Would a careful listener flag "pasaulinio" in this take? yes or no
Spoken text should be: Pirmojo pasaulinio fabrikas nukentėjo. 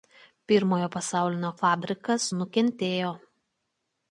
no